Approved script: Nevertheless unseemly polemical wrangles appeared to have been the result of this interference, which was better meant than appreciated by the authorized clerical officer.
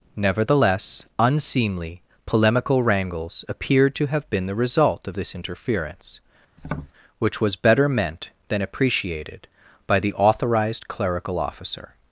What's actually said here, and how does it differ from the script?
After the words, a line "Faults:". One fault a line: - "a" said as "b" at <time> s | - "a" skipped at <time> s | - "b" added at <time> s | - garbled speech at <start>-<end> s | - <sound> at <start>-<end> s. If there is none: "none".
Nevertheless unseemly polemical wrangles appeared to have been the result of this interference, which was better meant than appreciated by the authorized clerical officer.
Faults:
- tap at 6.6-6.9 s